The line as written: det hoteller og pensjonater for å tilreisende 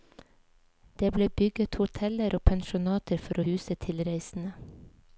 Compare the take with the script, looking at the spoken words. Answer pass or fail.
fail